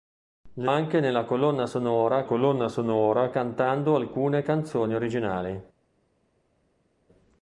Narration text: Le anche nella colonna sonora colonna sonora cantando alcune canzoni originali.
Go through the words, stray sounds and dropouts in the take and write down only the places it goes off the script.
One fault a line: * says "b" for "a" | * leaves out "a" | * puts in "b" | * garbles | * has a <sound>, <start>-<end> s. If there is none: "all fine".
all fine